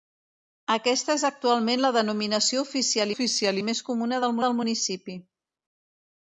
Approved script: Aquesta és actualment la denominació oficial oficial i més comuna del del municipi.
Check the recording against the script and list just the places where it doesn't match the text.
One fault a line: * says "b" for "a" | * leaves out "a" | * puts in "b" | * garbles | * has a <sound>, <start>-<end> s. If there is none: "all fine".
all fine